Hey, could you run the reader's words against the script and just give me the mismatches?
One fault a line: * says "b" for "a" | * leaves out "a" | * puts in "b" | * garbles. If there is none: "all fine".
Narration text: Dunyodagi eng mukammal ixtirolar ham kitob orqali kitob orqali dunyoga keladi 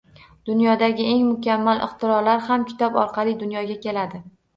* leaves out "kitob orqali"